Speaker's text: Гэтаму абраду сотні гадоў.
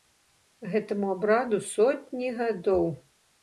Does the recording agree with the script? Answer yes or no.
yes